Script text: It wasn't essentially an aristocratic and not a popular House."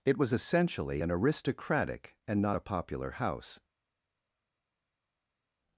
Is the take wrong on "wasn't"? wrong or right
wrong